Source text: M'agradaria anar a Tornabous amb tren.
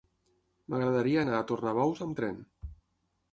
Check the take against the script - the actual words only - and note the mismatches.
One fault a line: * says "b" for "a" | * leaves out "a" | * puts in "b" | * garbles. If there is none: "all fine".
all fine